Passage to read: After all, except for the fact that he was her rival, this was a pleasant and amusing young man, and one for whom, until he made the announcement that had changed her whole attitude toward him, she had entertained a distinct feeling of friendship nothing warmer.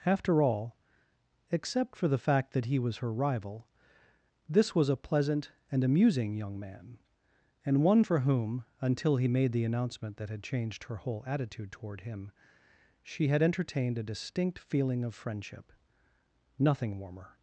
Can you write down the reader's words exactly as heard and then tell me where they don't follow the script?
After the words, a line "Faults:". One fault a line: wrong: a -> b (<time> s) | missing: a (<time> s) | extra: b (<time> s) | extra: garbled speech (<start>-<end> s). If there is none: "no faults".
After all, except for the fact that he was her rival, this was a pleasant and amusing young man, and one for whom, until he made the announcement that had changed her whole attitude toward him, she had entertained a distinct feeling of friendship nothing warmer.
Faults:
no faults